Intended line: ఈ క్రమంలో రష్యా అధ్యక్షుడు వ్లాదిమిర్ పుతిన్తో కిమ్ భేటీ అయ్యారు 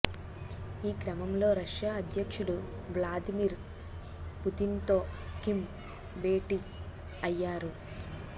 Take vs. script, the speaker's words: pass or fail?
pass